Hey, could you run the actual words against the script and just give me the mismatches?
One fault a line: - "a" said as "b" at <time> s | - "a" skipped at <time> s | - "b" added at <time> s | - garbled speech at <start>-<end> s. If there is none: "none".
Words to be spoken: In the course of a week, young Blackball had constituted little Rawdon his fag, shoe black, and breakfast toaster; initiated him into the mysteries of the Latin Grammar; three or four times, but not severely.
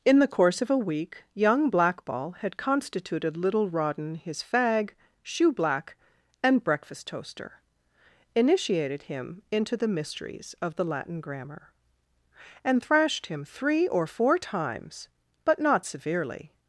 - "and thrashed him" added at 12.6 s